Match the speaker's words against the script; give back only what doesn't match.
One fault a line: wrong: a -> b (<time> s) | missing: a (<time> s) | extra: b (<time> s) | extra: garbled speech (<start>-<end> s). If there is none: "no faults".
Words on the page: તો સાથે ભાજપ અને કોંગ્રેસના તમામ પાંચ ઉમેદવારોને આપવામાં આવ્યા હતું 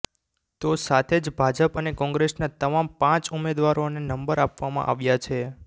extra: જ (1.2 s)
extra: નંબર (4.0 s)
wrong: હતું -> છે (5.2 s)